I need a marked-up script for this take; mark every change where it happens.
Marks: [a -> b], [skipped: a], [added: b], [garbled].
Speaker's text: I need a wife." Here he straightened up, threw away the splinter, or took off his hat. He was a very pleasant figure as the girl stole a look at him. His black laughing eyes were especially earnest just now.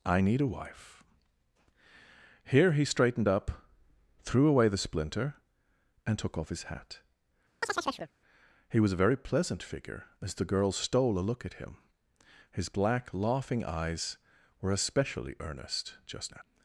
I need a wife." Here he straightened up, threw away the splinter, [or -> and] took off his hat. He was a very pleasant figure as the girl stole a look at him. His black laughing eyes were especially earnest just now.